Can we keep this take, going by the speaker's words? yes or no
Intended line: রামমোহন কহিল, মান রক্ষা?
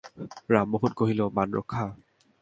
yes